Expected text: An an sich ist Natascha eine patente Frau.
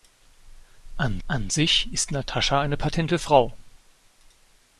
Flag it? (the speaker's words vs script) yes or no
no